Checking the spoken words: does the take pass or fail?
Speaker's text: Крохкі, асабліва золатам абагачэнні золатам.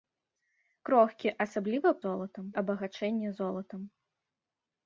pass